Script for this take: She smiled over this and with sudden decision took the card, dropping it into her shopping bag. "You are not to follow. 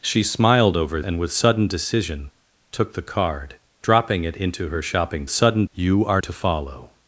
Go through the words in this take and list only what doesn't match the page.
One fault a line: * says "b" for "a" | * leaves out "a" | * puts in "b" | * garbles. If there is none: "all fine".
* leaves out "this"
* says "sudden" for "bag"
* leaves out "not"